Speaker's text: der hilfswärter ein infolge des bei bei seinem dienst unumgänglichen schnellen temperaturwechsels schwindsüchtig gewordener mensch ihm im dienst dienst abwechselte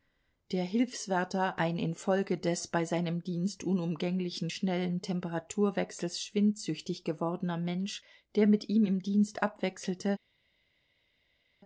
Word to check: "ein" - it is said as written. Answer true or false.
true